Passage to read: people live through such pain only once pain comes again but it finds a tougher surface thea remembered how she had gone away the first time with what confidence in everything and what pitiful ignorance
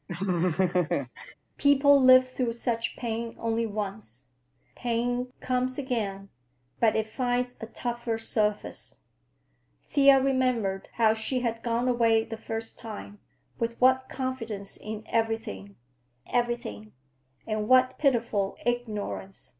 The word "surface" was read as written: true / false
true